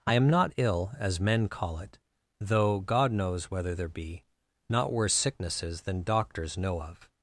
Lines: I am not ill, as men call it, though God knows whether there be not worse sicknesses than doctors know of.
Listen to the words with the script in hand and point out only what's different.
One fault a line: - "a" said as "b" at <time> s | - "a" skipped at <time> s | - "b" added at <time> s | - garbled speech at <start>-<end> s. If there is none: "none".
none